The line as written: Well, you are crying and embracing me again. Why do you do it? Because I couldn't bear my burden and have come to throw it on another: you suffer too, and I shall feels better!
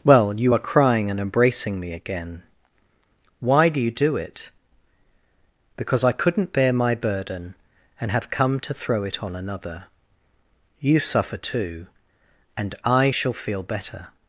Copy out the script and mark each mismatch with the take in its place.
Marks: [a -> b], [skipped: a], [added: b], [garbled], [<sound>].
Well, you are crying and embracing me again. Why do you do it? Because I couldn't bear my burden and have come to throw it on another: you suffer too, and I shall [feels -> feel] better!